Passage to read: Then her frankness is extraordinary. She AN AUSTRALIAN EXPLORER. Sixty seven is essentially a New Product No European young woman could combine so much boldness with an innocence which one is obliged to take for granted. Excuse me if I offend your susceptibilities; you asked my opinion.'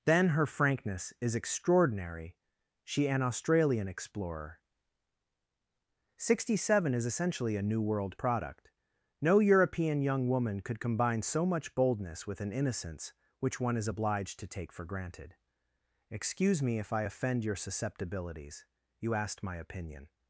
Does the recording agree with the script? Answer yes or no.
no